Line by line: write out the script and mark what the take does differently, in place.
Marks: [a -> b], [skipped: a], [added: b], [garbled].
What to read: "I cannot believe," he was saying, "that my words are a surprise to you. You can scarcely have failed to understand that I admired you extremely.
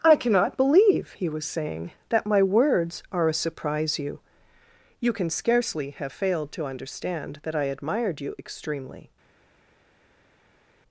"I cannot believe," he was saying, "that my words are a surprise [skipped: to] you. You can scarcely have failed to understand that I admired you extremely.